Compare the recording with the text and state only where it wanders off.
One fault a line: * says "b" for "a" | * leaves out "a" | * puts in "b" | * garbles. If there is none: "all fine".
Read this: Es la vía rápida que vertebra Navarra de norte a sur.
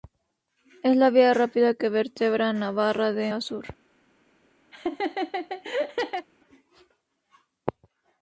* leaves out "norte"